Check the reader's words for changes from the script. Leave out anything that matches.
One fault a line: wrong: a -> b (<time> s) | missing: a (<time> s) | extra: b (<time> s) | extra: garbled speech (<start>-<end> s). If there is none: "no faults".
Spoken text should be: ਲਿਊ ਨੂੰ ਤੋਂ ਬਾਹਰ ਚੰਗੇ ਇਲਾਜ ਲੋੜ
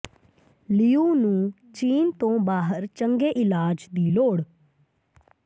extra: ਚੀਨ (1.7 s)
extra: ਦੀ (3.9 s)